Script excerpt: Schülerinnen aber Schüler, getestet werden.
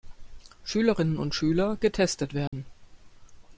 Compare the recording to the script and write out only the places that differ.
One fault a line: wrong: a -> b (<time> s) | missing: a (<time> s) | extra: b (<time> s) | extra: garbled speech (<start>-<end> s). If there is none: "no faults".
wrong: aber -> und (1.2 s)